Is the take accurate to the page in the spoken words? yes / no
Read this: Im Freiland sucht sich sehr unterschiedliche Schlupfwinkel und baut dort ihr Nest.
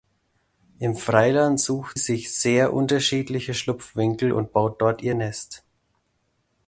yes